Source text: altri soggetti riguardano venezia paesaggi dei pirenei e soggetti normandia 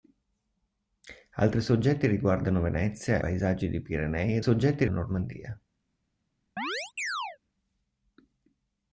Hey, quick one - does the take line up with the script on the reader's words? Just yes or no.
yes